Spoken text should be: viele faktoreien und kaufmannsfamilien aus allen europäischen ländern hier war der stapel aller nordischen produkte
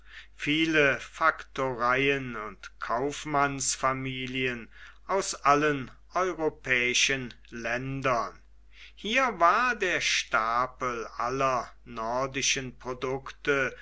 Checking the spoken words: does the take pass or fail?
pass